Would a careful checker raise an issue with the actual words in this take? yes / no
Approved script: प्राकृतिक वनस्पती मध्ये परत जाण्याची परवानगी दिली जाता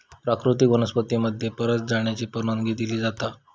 no